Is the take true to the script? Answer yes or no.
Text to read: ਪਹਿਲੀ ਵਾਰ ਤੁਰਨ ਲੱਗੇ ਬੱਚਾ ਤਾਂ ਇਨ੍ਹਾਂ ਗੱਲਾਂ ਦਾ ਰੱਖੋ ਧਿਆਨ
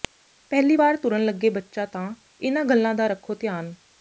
yes